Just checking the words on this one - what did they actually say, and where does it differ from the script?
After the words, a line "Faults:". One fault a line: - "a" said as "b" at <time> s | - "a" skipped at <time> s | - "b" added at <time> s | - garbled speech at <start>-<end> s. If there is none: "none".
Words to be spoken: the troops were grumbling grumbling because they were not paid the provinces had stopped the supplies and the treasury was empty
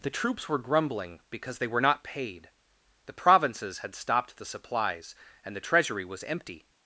the troops were grumbling because they were not paid the provinces had stopped the supplies and the treasury was empty
Faults:
- "grumbling" skipped at 1.2 s